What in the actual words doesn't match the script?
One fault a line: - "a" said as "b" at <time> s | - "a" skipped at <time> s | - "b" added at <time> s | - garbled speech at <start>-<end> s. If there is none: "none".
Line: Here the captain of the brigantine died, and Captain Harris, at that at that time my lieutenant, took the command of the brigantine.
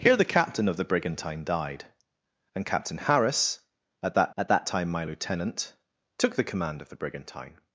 none